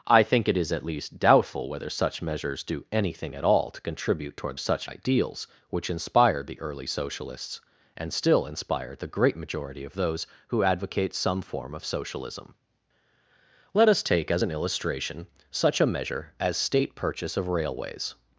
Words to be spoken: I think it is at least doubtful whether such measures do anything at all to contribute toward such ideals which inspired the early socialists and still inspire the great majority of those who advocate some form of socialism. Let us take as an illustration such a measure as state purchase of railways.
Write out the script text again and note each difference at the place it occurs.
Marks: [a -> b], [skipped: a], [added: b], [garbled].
I think it is at least doubtful whether such measures do anything at all to contribute toward such ideals which inspired the early socialists and still inspire the great majority of those who advocate some form of socialism. Let us take as an illustration such a measure as state purchase of railways.